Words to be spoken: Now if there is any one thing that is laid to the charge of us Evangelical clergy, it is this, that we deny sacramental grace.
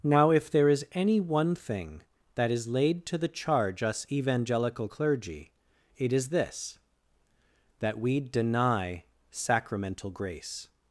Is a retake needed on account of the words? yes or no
yes